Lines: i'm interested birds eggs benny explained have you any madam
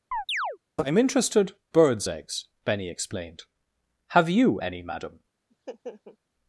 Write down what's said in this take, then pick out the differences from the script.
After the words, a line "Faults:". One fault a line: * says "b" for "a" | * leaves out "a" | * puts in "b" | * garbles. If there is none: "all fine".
i'm interested birds eggs benny explained have you any madam
Faults:
all fine